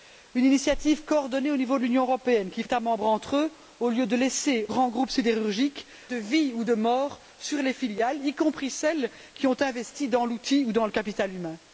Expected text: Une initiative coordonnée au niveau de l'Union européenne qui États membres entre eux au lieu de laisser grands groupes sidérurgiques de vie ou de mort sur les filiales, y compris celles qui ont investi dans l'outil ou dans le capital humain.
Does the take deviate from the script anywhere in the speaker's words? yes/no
no